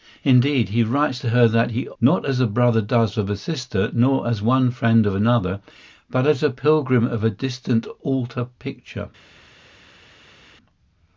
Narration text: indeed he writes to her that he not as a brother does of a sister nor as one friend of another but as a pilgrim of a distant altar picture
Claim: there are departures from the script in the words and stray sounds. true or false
false